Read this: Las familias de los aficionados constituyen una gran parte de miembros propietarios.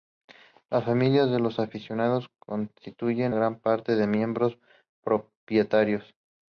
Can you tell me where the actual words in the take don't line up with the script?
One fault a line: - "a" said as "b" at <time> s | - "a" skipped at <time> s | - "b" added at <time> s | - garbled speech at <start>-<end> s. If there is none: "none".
- "una" skipped at 3.4 s